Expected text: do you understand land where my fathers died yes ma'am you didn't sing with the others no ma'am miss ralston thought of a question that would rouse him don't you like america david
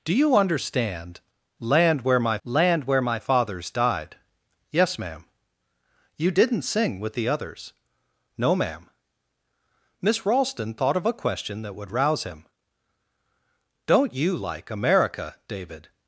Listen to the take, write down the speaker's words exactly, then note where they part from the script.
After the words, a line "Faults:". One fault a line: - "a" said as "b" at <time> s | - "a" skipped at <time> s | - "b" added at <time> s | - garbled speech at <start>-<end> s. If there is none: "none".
do you understand land where my land where my fathers died yes ma'am you didn't sing with the others no ma'am miss ralston thought of a question that would rouse him don't you like america david
Faults:
- "land where my" added at 2.4 s